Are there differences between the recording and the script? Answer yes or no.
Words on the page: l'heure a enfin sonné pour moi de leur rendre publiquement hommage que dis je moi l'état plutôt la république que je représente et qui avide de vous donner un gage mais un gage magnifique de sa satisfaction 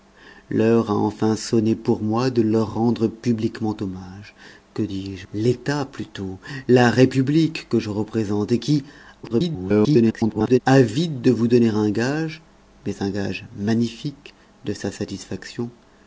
yes